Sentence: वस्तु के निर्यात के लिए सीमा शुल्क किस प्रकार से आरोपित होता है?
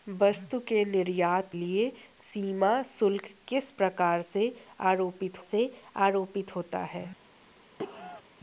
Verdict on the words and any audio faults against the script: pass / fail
fail